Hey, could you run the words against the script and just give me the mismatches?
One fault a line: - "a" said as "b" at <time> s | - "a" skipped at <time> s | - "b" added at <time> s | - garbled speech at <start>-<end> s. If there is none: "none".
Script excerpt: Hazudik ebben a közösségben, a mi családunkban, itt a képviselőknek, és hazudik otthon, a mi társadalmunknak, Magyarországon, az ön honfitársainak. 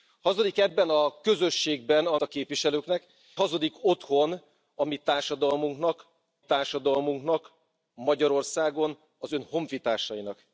- "mi családunkban itt" skipped at 2.2 s
- "és" skipped at 3.1 s
- "társadalmunknak" added at 6.4 s